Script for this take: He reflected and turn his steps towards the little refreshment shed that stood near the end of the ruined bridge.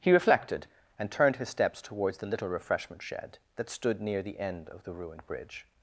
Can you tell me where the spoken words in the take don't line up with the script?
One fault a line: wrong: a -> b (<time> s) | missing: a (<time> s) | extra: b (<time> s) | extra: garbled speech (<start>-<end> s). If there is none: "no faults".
wrong: turn -> turned (1.1 s)